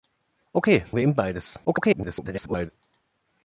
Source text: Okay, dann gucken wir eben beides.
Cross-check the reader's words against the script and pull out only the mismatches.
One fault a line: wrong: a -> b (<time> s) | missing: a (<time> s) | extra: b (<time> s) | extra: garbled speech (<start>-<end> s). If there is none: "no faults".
missing: dann gucken (0.8 s)
extra: garbled speech (1.6-2.7 s)